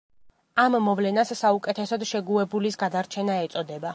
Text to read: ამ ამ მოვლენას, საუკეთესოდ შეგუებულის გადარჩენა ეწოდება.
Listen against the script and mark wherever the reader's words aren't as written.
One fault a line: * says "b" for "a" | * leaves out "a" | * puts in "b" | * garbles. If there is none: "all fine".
* leaves out "ამ"